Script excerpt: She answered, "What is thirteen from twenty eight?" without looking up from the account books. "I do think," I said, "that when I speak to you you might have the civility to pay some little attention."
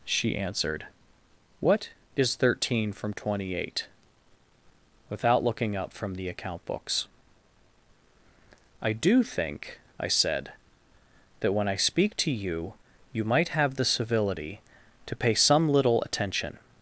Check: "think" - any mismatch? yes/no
no